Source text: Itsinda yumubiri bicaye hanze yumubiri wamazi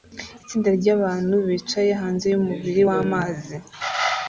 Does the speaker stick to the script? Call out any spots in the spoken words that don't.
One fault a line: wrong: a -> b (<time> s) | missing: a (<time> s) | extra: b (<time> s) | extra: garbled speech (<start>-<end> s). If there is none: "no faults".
wrong: yumubiri -> ryabantu (0.8 s)